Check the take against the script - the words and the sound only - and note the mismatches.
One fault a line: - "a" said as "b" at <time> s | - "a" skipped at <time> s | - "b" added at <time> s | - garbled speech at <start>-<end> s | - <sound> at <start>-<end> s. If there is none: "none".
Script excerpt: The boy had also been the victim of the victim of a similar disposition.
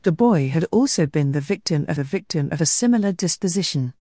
none